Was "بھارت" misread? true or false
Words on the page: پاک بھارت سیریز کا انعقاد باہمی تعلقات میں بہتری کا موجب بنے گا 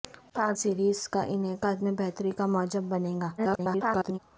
true